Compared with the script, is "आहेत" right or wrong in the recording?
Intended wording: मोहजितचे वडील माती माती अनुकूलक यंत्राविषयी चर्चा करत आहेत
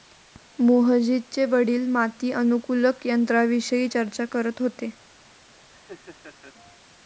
wrong